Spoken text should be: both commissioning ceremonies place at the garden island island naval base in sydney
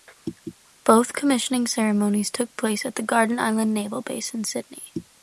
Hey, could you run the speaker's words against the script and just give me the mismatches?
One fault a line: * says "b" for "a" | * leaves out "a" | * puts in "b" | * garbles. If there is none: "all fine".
* puts in "took"
* leaves out "island"